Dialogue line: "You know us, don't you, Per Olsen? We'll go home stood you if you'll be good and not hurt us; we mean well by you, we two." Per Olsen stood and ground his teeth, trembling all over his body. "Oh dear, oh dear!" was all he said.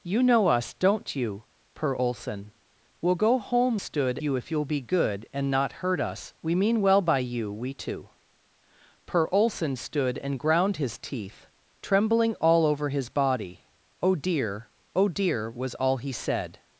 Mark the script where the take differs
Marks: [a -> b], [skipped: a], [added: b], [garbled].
"You know us, don't you, Per Olsen? We'll go home stood you if you'll be good and not hurt us; we mean well by you, we two." Per Olsen stood and ground his teeth, trembling all over his body. "Oh dear, oh dear!" was all he said.